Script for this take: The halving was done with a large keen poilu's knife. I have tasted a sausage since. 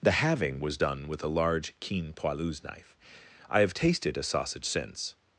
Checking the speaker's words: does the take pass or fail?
pass